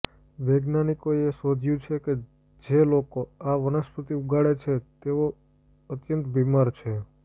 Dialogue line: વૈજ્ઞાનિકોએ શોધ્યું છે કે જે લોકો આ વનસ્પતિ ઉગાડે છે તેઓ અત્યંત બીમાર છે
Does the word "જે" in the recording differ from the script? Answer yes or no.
no